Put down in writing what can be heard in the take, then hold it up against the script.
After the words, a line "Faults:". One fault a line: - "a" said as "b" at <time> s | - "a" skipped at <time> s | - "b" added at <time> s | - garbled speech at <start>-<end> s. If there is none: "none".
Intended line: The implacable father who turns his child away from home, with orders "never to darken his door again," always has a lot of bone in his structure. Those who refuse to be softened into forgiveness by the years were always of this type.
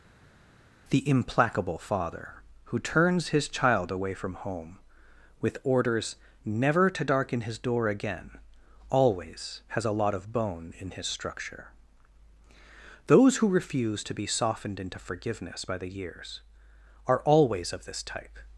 The implacable father who turns his child away from home, with orders "never to darken his door again," always has a lot of bone in his structure. Those who refuse to be softened into forgiveness by the years are always of this type.
Faults:
- "were" said as "are" at 17.1 s